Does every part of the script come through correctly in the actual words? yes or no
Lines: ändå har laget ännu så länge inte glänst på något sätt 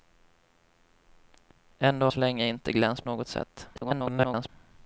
no